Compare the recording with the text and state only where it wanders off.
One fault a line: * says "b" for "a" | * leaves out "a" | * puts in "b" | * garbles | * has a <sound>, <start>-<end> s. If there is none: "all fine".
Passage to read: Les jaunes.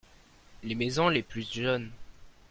* puts in "maisons les plus"